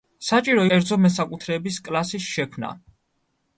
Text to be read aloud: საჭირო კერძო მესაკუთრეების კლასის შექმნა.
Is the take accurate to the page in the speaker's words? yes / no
yes